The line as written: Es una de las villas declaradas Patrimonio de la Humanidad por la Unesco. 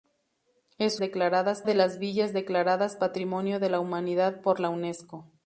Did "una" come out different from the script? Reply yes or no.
yes